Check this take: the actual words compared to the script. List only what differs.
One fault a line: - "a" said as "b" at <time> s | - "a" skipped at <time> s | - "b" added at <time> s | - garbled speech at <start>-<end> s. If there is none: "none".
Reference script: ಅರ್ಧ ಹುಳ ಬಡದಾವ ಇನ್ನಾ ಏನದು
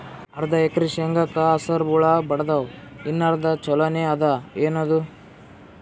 - "ಎಕರಿ ಶೇಂಗಾಕ ಹಸರ" added at 0.7 s
- "ಅರ್ಧ ಛೊಲೋನೆ ಅದ" added at 3.3 s